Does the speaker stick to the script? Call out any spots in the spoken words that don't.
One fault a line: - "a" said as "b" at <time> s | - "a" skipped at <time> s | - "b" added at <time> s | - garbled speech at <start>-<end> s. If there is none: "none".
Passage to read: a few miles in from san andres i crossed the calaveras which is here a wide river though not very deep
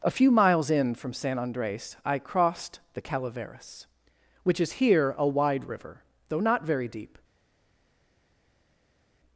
none